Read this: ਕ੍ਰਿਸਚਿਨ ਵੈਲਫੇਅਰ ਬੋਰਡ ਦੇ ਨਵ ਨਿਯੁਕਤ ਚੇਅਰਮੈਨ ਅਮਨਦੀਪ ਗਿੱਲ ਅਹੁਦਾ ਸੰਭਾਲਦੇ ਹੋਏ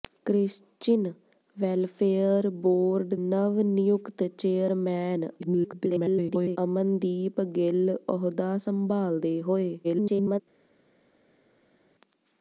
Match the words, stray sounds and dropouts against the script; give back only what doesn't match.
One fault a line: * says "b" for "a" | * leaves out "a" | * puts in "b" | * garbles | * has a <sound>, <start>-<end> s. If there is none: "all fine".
* leaves out "ਦੇ"
* garbles
* garbles